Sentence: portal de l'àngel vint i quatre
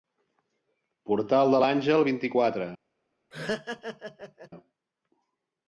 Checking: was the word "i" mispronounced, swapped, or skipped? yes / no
no